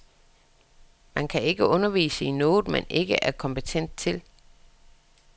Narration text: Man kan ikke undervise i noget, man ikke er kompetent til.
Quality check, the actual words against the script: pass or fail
pass